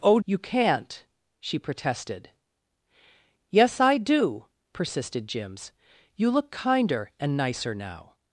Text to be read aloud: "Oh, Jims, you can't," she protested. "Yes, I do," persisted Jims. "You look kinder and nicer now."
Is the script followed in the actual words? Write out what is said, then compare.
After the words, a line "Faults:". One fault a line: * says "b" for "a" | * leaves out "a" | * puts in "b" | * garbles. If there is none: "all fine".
"Oh, You can't," she protested. "Yes, I do," persisted Jims. "You look kinder and nicer now."
Faults:
* leaves out "Jims"